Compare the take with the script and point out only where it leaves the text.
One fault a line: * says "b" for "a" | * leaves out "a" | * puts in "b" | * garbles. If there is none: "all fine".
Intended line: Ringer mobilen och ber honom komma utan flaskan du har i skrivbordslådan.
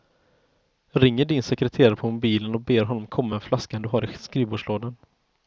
* puts in "din sekreterare på"
* says "med" for "utan"